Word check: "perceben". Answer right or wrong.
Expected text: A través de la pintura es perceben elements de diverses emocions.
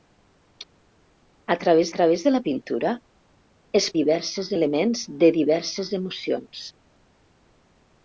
wrong